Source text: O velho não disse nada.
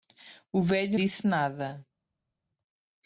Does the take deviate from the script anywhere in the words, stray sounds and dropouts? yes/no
yes